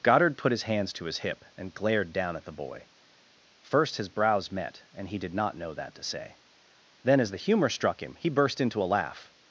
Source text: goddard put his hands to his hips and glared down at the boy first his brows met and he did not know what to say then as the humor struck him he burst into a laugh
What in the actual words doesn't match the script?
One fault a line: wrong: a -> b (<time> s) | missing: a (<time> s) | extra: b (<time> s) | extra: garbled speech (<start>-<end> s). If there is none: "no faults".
wrong: hips -> hip (1.2 s)
wrong: what -> that (5.7 s)